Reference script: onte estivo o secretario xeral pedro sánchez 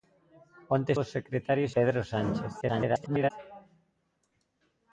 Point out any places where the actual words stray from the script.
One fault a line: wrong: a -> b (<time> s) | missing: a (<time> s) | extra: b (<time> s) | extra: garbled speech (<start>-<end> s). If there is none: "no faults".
missing: estivo (0.9 s)
missing: xeral (1.7 s)
extra: garbled speech (2.6-3.3 s)